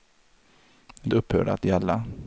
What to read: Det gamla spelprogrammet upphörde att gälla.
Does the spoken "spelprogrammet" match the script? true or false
false